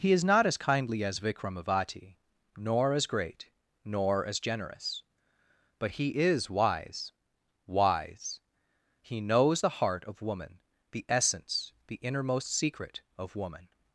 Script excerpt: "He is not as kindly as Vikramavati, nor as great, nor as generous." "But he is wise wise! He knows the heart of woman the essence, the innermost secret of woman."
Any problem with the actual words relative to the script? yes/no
no